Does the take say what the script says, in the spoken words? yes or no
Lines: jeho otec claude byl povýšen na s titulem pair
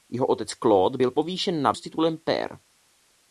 yes